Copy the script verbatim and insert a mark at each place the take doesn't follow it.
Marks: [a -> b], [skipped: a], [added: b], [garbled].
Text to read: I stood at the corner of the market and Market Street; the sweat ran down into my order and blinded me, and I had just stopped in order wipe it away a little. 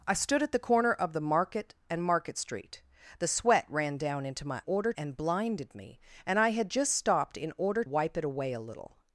I stood at the corner of the market and Market Street; the sweat ran down into my order and blinded me, and I had just stopped in order wipe it away a little.